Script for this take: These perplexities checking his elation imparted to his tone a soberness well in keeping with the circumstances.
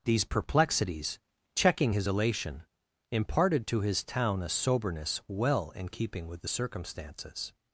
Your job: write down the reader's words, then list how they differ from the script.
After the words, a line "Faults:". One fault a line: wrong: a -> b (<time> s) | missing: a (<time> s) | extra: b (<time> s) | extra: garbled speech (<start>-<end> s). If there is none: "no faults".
These perplexities checking his elation imparted to his town a soberness well in keeping with the circumstances.
Faults:
wrong: tone -> town (4.0 s)